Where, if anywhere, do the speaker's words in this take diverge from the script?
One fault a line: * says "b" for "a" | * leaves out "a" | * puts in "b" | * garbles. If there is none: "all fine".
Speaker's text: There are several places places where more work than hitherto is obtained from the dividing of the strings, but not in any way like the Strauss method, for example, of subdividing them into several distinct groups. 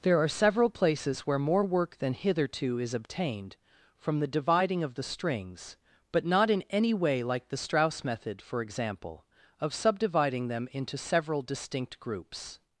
* leaves out "places"